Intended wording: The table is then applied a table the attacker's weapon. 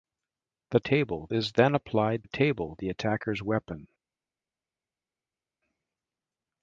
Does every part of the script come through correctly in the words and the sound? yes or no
yes